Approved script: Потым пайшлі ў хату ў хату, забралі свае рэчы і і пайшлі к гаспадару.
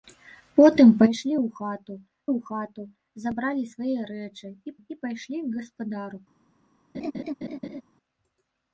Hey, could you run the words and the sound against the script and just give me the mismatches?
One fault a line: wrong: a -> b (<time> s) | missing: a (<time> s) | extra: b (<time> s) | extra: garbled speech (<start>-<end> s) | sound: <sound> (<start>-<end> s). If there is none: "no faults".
sound: laugh (6.9-7.8 s)